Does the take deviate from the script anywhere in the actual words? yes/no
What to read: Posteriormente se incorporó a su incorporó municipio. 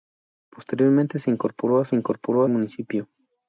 no